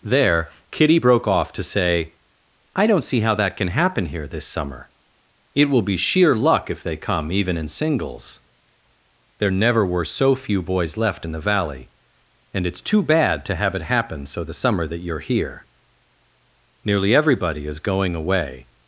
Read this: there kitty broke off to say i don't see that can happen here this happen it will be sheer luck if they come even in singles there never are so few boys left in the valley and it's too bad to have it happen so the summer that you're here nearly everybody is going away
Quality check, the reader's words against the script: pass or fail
fail